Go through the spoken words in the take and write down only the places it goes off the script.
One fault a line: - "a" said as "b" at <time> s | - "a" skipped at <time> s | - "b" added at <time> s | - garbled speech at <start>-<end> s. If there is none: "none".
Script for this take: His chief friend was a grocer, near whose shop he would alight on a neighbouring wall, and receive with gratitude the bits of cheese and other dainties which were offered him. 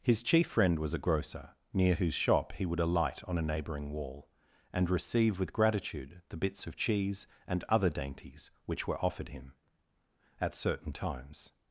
- "At certain times" added at 10.4 s